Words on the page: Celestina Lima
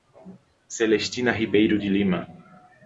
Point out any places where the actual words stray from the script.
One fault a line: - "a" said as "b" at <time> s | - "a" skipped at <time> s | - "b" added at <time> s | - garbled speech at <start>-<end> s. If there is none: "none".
- "Ribeiro de" added at 1.3 s